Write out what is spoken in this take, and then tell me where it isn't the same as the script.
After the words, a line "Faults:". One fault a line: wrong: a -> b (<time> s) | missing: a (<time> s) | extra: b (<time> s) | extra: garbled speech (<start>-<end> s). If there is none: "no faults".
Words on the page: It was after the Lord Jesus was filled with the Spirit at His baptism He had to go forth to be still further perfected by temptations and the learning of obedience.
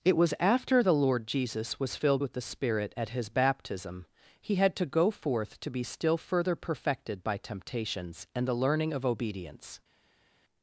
It was after the Lord Jesus was filled with the Spirit at His baptism He had to go forth to be still further perfected by temptations and the learning of obedience.
Faults:
no faults